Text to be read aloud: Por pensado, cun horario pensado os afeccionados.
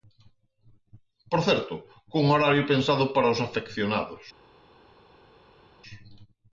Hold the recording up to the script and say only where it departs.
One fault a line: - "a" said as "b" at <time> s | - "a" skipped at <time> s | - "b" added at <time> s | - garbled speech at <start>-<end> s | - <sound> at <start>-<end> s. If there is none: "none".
- "pensado" said as "certo" at 1.5 s
- "para" added at 3.1 s